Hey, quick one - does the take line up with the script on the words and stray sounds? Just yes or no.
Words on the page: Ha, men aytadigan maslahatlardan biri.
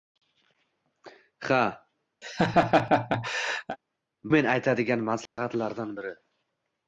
no